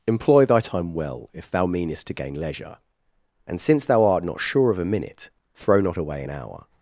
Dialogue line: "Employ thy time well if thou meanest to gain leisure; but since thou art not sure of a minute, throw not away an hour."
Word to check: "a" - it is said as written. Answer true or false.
true